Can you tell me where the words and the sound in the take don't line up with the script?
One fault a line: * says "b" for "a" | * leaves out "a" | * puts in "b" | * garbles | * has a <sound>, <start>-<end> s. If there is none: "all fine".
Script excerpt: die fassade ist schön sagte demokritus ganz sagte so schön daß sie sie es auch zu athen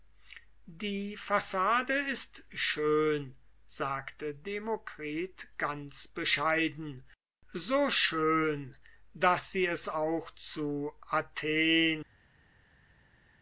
* says "bescheiden" for "sagte"
* leaves out "sie"